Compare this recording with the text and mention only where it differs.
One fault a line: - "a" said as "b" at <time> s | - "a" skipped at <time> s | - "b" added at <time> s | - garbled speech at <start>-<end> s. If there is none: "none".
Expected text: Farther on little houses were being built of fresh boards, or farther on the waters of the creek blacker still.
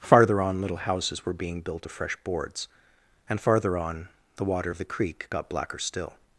- "or" said as "and" at 3.3 s
- "waters" said as "water" at 4.4 s
- "got" added at 5.3 s